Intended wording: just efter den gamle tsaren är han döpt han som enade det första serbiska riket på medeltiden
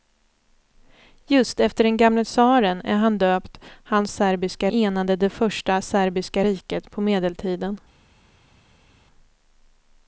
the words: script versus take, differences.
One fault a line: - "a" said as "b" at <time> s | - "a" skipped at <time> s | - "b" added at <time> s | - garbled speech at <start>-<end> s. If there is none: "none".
- "som" said as "serbiska" at 4.1 s